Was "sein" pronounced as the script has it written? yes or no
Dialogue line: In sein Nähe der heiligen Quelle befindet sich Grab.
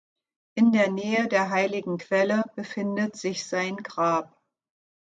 no